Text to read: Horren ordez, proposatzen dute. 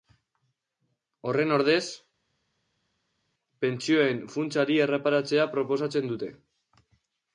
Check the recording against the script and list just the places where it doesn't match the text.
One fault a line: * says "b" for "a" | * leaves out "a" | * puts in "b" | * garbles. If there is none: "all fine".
* puts in "pentsioen funtsari erreparatzea"